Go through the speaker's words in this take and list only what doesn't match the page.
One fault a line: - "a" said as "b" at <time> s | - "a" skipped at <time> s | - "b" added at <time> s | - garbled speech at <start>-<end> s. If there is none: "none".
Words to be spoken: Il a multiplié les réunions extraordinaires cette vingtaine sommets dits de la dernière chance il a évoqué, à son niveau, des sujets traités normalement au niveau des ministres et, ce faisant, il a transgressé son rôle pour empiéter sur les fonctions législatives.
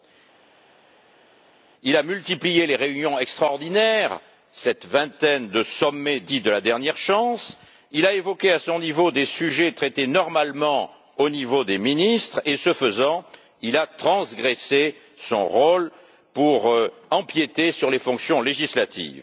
- "de" added at 5.5 s